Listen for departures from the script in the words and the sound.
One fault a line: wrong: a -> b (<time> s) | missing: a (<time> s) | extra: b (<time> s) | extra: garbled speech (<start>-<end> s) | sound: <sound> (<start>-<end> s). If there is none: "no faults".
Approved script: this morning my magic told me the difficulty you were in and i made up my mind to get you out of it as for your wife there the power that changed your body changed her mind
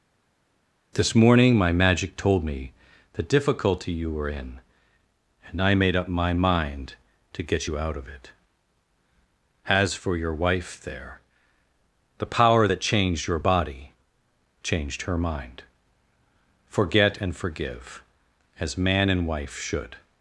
extra: forget and forgive as man and wife should (16.7 s)